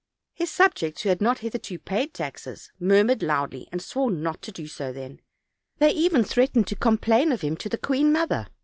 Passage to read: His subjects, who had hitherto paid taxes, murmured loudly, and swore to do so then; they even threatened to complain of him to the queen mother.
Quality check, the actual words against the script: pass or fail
fail